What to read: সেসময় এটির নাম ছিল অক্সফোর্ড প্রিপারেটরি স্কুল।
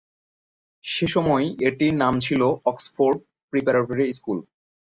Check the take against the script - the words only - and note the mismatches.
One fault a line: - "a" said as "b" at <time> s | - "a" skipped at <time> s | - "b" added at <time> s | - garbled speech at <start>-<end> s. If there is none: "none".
none